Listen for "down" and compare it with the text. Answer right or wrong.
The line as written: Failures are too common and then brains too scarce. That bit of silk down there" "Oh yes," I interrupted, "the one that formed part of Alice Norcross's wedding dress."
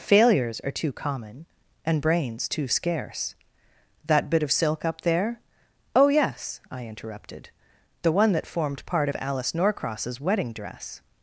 wrong